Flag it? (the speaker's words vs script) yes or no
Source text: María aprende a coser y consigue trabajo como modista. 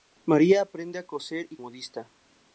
yes